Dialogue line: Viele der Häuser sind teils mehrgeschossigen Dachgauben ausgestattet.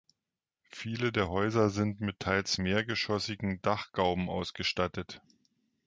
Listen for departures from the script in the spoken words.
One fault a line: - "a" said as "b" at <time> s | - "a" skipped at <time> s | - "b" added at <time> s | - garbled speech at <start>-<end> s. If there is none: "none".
- "mit" added at 2.0 s